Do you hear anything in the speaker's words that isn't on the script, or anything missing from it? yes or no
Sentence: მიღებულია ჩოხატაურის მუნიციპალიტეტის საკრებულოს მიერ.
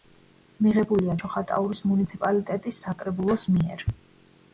no